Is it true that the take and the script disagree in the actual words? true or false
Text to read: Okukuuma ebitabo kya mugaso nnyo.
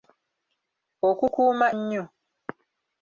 true